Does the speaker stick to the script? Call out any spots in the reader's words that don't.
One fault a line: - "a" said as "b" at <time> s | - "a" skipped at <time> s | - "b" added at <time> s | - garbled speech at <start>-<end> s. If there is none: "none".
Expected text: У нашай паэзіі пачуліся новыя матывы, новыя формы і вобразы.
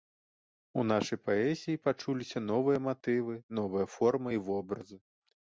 none